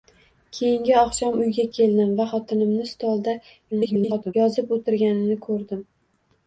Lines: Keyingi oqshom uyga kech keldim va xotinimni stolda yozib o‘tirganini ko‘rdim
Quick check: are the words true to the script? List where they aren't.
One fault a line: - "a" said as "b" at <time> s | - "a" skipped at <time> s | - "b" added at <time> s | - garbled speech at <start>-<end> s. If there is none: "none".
- "kech" skipped at 1.6 s
- garbled speech at 3.7-4.3 s